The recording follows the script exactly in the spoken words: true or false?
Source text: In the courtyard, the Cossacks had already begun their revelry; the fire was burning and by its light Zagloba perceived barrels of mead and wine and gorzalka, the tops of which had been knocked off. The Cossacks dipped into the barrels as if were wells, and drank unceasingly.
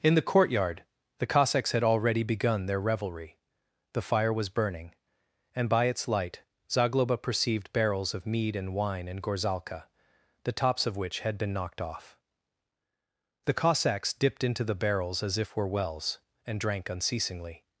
true